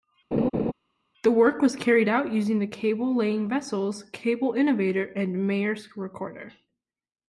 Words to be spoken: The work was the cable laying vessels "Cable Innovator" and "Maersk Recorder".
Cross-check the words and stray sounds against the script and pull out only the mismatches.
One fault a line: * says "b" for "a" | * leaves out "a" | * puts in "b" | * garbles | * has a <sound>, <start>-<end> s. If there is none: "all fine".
* has a laugh, 0.3-0.7 s
* puts in "carried out using"